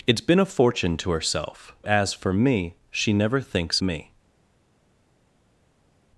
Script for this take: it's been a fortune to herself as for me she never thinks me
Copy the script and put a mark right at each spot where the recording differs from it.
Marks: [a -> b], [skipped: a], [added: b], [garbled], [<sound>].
it's been a fortune to herself as for me she never thinks me